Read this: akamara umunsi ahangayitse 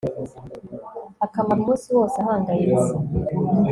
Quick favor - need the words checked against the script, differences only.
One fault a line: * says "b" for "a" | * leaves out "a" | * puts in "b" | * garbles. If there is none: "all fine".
* puts in "wose"